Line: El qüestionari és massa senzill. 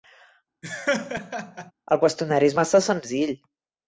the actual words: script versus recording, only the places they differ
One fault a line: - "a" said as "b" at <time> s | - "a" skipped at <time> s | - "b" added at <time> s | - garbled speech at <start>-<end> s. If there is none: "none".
none